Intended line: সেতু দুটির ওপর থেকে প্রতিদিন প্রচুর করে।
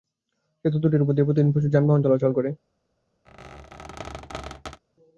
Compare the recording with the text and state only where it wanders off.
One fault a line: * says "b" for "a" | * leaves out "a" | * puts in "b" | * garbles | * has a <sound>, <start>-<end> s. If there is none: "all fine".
* says "দিয়ে" for "থেকে"
* puts in "যানবাহন চলাচল"
* has a squeak, 3.3-4.8 s